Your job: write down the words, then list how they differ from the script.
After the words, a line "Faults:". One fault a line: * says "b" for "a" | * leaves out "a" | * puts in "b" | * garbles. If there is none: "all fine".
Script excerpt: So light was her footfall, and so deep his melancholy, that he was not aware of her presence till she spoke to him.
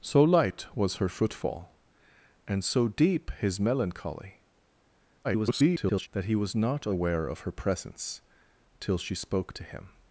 So light was her footfall, and so deep his melancholy, [garbled] that he was not aware of her presence till she spoke to him.
Faults:
* garbles